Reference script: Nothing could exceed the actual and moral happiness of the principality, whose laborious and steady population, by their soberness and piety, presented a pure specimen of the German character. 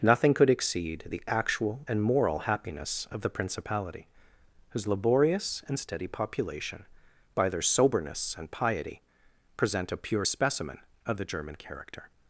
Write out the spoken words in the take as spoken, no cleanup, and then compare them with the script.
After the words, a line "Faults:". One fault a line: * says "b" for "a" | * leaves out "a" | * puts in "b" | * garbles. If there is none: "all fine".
Nothing could exceed the actual and moral happiness of the principality, whose laborious and steady population, by their soberness and piety, present a pure specimen of the German character.
Faults:
* says "present" for "presented"